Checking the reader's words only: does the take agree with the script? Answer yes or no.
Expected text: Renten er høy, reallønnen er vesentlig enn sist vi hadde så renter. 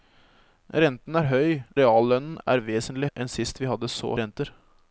yes